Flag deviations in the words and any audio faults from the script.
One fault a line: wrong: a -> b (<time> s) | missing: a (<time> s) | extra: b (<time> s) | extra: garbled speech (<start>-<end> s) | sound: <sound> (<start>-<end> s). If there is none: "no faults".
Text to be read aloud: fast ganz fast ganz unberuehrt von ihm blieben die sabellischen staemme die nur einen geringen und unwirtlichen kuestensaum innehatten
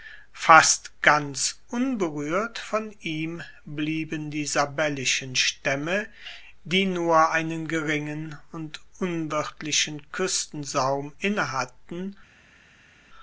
missing: fast ganz (1.6 s)